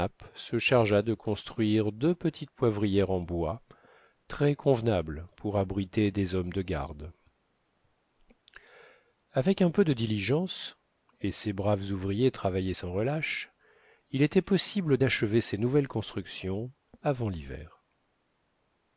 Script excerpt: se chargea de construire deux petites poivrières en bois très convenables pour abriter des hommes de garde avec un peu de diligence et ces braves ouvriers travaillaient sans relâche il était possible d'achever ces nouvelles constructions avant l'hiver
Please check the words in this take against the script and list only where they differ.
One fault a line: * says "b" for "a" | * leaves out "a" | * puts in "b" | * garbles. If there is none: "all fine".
all fine